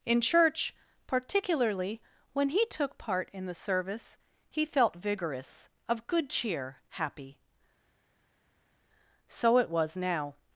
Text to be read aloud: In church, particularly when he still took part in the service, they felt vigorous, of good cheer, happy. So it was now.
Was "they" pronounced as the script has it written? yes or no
no